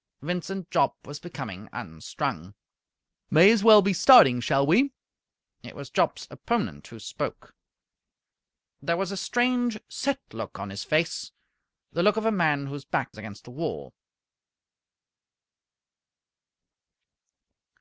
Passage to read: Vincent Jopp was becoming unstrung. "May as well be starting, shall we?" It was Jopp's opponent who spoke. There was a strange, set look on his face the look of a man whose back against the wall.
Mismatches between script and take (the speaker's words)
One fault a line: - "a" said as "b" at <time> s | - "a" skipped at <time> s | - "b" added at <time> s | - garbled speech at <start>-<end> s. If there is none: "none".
none